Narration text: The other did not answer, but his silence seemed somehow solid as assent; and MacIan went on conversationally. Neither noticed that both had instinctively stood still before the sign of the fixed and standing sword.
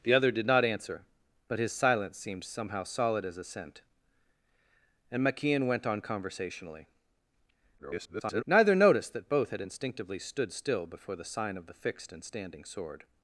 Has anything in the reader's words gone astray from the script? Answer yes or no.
yes